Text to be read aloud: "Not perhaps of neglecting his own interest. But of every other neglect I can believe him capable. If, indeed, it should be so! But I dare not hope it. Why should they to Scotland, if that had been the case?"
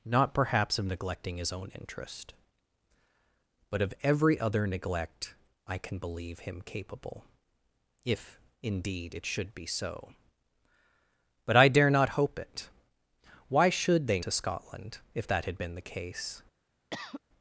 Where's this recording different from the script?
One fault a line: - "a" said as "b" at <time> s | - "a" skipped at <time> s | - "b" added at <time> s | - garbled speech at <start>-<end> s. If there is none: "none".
none